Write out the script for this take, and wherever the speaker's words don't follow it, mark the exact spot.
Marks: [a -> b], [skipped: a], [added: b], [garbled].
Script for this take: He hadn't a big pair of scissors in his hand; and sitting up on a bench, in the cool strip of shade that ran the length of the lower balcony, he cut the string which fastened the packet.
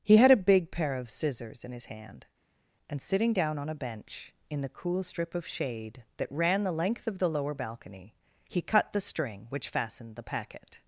He [hadn't -> had] a big pair of scissors in his hand; and sitting [up -> down] on a bench, in the cool strip of shade that ran the length of the lower balcony, he cut the string which fastened the packet.